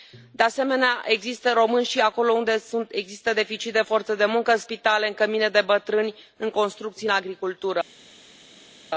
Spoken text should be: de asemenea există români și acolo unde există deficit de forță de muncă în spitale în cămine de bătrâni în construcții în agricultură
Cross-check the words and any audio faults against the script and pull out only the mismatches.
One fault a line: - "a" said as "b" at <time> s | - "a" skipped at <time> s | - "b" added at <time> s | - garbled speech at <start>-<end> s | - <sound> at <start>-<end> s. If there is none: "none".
none